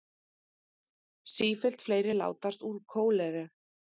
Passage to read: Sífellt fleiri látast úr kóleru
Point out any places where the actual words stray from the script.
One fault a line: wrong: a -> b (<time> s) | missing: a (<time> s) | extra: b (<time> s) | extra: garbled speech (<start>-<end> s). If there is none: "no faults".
no faults